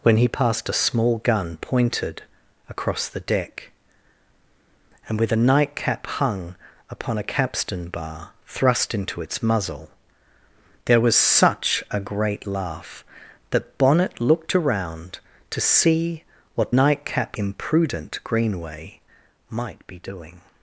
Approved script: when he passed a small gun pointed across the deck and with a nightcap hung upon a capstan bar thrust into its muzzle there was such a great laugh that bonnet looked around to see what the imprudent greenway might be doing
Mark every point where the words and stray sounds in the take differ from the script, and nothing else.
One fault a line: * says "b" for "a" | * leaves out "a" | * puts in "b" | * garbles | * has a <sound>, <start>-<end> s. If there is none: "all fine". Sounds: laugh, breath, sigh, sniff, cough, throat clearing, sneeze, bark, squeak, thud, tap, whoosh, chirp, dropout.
* says "nightcap" for "the"